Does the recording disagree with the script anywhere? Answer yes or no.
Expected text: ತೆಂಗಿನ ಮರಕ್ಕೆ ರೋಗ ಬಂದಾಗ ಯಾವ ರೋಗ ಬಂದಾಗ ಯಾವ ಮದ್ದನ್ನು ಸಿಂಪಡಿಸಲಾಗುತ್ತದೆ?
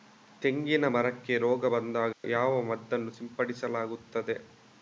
yes